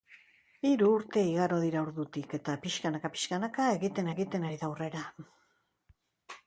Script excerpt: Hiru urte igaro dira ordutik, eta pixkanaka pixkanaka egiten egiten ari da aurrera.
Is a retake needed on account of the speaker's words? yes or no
no